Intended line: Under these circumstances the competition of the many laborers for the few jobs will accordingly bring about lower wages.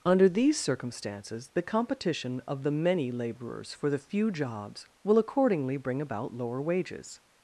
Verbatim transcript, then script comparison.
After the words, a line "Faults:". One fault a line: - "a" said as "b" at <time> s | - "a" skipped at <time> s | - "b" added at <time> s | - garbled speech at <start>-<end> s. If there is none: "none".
Under these circumstances the competition of the many laborers for the few jobs will accordingly bring about lower wages.
Faults:
none